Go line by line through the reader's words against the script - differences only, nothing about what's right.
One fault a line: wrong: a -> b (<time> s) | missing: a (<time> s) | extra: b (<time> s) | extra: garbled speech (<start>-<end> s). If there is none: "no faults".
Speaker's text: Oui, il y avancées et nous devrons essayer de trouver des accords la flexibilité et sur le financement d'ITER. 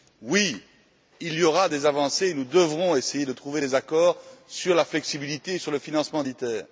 extra: aura des (1.4 s)
extra: sur (4.5 s)